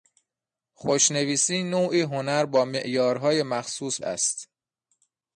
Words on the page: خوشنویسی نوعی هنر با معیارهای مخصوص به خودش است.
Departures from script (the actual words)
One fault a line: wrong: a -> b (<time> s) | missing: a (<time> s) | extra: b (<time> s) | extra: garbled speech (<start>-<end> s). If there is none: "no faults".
missing: به خودش (4.0 s)